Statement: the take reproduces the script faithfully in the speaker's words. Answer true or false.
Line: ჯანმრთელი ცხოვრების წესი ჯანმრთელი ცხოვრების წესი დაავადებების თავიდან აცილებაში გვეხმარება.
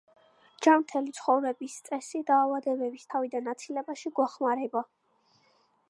false